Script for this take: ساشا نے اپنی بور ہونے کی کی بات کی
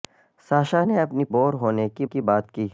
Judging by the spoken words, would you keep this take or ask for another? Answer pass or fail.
pass